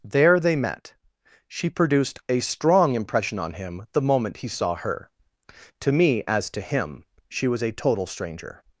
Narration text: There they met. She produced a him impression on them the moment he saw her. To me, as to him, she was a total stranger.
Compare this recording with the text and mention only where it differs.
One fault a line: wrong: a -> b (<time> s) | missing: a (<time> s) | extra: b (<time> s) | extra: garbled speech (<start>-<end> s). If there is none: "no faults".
wrong: him -> strong (2.4 s)
wrong: them -> him (3.5 s)